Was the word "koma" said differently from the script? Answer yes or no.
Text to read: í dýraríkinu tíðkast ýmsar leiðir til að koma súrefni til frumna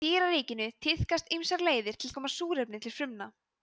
no